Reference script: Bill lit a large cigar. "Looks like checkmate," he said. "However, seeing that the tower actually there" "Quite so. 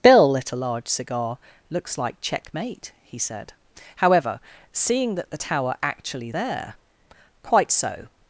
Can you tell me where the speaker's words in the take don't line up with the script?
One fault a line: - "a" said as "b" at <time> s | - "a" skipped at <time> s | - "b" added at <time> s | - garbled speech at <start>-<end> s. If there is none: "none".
none